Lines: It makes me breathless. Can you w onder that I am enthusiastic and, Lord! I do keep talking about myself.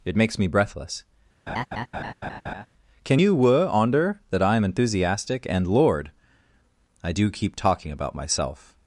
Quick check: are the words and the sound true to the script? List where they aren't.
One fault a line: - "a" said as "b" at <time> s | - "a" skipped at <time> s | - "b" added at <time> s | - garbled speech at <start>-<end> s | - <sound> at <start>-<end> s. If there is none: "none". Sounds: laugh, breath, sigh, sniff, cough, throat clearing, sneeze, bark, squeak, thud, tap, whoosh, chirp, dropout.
- laugh at 1.5-2.7 s
- "w" said as "were" at 3.3 s